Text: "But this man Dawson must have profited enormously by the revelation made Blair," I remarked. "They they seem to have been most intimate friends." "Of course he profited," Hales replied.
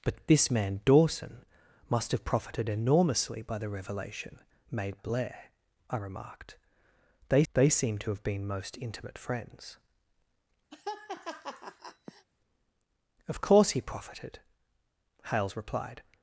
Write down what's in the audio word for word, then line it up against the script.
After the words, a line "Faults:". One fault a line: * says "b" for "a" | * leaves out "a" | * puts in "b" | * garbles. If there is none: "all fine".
"But this man Dawson must have profited enormously by the revelation made Blair," I remarked. "They they seem to have been most intimate friends." "Of course he profited," Hales replied.
Faults:
all fine